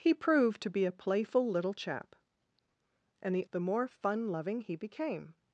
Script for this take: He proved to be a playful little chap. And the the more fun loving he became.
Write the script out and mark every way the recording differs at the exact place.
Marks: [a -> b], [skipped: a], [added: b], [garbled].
He proved to be a playful little chap. And the the more fun loving he became.